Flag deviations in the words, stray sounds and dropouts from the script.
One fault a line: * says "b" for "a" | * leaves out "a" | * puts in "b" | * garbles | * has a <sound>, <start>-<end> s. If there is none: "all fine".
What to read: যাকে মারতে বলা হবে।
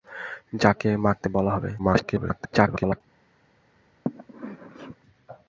* garbles
* has a sneeze, 4.1-5.0 s